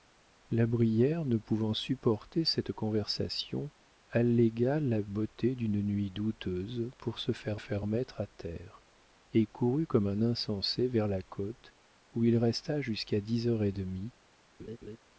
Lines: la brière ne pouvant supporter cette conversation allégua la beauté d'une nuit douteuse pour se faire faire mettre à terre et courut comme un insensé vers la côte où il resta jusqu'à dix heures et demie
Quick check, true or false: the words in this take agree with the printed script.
true